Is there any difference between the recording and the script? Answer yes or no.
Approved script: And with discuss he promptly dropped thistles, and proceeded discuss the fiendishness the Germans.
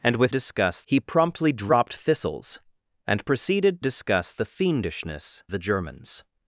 no